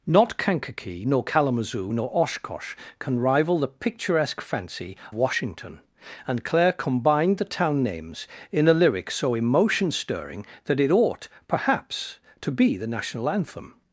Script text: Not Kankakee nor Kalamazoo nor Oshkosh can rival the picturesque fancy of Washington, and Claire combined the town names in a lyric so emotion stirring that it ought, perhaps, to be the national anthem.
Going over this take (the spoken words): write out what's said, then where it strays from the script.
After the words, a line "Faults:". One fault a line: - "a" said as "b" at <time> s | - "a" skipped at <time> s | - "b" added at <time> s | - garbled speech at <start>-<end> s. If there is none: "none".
Not Kankakee nor Kalamazoo nor Oshkosh can rival the picturesque fancy Washington, and Claire combined the town names in a lyric so emotion stirring that it ought, perhaps, to be the national anthem.
Faults:
- "of" skipped at 4.9 s